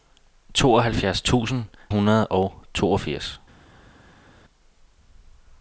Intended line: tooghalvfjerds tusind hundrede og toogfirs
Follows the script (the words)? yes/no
yes